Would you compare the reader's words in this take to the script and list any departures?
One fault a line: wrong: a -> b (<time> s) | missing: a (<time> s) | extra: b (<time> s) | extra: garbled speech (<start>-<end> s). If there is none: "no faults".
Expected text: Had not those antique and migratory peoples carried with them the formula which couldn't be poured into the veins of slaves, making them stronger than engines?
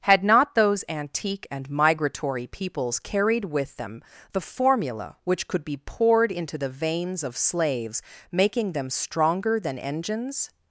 wrong: couldn't -> could (5.5 s)